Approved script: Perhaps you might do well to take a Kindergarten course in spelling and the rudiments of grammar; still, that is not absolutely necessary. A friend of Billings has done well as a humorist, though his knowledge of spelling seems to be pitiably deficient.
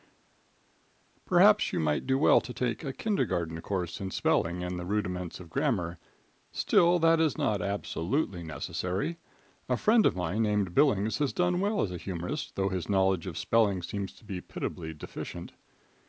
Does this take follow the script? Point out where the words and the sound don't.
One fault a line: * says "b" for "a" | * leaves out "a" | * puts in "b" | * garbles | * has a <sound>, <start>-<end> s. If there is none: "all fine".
* puts in "mine named"